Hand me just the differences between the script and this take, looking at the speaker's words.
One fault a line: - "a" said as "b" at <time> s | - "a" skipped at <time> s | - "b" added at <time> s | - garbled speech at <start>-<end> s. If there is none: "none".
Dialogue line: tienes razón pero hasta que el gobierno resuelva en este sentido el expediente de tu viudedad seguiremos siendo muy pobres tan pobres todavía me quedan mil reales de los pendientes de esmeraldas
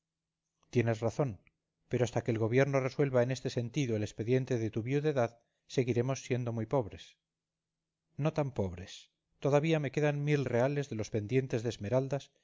- "no" added at 8.2 s